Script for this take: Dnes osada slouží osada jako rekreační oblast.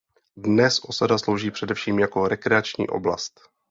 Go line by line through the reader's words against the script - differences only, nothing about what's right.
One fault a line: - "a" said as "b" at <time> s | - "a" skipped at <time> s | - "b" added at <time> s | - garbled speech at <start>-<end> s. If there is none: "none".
- "osada" said as "především" at 1.5 s